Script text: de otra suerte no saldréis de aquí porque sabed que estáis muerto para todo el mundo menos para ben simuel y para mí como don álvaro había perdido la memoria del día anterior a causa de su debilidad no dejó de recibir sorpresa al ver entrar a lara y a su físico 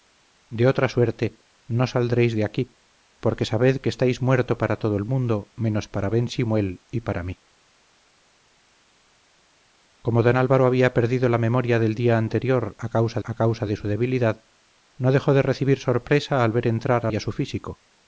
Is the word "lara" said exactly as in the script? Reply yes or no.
no